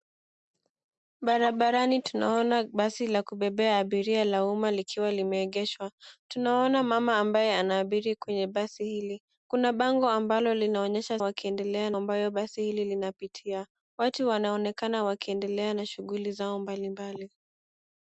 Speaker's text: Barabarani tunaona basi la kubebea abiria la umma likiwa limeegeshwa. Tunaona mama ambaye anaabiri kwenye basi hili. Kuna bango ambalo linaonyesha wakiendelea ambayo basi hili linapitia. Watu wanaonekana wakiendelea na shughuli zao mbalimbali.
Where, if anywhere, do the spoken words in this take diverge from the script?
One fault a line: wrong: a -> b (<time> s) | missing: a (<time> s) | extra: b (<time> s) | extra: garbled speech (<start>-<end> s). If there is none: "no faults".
no faults